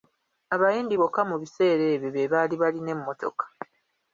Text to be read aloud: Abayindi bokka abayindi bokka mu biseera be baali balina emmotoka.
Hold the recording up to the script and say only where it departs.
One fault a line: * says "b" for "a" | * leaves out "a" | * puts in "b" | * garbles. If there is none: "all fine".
* leaves out "abayindi bokka"
* puts in "ebyo"